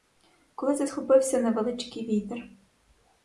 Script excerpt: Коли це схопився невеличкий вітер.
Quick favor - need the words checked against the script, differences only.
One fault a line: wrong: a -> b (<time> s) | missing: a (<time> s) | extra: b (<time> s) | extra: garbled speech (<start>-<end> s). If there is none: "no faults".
no faults